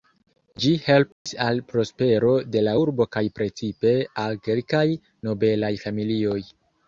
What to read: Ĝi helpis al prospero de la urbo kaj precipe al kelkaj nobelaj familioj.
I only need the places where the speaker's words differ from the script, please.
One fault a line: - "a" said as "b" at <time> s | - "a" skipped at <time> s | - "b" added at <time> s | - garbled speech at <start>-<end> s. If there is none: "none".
none